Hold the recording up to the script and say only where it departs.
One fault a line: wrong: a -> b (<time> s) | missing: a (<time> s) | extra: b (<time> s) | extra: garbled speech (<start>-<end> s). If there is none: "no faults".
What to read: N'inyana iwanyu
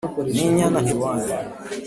no faults